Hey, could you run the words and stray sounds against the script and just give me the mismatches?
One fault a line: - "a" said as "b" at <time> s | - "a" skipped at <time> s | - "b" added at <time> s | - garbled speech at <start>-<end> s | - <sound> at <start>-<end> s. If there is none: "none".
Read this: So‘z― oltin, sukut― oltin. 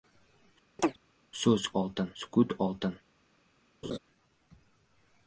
- chirp at 0.8-1.0 s
- laugh at 3.8-4.0 s